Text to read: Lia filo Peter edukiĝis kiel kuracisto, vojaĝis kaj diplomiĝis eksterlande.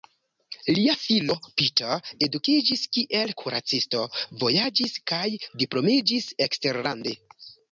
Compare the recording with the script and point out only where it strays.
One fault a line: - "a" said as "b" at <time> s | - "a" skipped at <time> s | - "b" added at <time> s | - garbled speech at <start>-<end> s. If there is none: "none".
none